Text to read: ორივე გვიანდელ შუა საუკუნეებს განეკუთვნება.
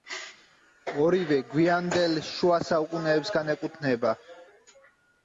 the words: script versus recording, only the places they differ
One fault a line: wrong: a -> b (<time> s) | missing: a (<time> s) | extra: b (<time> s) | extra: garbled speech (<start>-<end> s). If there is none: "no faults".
no faults